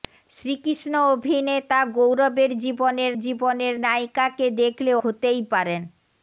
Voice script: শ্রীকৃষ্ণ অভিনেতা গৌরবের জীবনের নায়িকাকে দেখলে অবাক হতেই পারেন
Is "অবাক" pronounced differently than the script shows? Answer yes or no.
yes